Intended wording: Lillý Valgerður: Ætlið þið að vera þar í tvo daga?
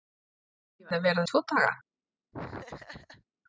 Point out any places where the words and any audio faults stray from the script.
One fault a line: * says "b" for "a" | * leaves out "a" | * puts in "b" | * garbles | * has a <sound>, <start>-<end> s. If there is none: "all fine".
* leaves out "Valgerður Ætlið"
* leaves out "þar"
* has a laugh, 2.3-3.2 s